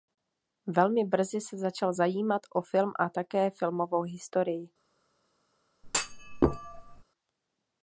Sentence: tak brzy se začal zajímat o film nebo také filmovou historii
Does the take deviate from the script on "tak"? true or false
true